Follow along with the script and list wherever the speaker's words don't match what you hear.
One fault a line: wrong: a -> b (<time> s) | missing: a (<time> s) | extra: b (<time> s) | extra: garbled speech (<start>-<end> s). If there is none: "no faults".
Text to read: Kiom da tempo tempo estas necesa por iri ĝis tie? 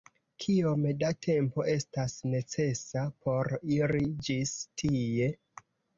missing: tempo (1.6 s)